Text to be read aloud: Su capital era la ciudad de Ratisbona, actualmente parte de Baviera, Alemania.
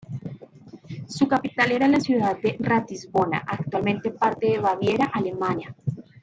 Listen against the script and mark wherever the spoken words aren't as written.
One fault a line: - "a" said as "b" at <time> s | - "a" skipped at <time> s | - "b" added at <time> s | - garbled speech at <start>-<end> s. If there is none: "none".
none